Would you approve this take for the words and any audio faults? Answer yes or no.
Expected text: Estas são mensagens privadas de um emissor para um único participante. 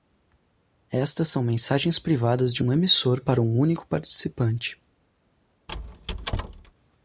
no